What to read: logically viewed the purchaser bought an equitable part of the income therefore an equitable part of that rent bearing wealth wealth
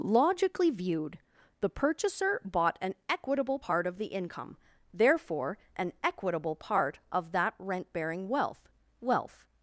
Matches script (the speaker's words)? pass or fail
pass